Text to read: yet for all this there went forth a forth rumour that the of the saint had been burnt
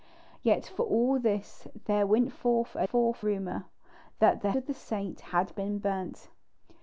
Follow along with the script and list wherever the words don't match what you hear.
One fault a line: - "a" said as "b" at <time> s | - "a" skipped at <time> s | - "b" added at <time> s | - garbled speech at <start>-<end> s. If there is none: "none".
none